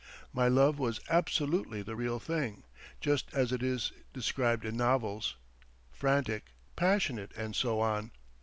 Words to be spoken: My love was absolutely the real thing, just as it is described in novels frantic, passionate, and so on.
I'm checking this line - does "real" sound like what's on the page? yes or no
yes